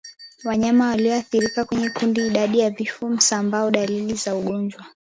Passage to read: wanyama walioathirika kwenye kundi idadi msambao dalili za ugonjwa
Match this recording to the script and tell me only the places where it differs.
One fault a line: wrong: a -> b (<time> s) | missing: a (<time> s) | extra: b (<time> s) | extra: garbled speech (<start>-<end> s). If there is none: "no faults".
extra: ya vifo (2.6 s)